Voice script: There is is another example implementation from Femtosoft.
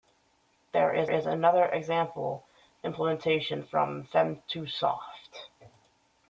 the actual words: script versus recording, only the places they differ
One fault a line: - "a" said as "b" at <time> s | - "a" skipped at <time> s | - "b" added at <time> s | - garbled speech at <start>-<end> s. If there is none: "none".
none